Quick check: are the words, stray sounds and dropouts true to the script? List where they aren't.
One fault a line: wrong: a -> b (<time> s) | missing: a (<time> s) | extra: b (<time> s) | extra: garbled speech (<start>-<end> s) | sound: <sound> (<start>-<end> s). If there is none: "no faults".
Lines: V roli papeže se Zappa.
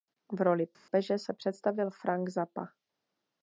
sound: dropout (0.7-0.9 s)
extra: představil Frank (1.3 s)